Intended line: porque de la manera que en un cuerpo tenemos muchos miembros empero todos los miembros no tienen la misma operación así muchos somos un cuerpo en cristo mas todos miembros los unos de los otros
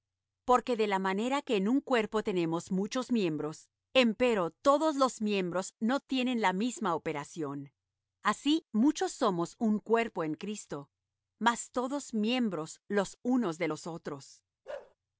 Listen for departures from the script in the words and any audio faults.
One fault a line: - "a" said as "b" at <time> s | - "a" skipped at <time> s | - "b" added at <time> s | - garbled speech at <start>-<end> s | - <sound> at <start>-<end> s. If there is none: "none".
- bark at 14.7-15.0 s